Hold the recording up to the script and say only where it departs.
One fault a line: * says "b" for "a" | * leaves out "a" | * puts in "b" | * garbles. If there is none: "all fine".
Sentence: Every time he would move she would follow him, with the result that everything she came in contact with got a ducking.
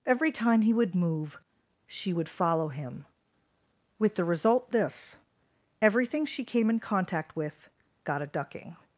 * says "this" for "that"